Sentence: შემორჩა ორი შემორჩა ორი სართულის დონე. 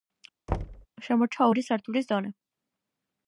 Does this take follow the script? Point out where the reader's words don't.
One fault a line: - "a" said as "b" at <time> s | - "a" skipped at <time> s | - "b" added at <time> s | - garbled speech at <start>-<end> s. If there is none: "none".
- "შემორჩა ორი" skipped at 1.6 s